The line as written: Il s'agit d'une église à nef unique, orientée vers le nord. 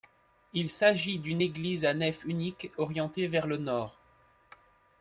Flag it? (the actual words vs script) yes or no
no